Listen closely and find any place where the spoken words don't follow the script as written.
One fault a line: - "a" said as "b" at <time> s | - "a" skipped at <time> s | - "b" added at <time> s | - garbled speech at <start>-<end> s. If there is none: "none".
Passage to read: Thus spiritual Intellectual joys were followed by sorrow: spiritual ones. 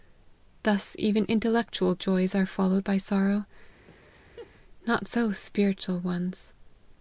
- "spiritual" said as "even" at 1.0 s
- "were" said as "are" at 2.3 s
- "not so" added at 4.9 s